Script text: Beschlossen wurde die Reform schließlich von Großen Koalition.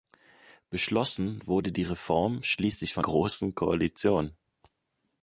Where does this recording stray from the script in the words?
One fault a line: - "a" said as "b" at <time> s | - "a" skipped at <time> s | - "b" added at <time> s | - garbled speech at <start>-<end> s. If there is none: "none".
none